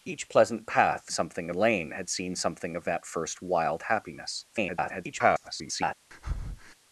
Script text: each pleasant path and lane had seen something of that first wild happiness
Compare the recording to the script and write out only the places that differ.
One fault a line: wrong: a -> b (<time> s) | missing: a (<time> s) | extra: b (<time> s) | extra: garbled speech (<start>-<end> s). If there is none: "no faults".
wrong: and -> something (1.1 s)
extra: garbled speech (4.5-5.9 s)